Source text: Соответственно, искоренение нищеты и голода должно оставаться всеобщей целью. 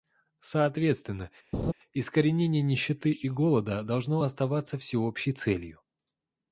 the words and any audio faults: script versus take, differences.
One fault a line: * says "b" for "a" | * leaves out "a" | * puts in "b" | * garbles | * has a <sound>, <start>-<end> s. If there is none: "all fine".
* has a laugh, 1.5-1.7 s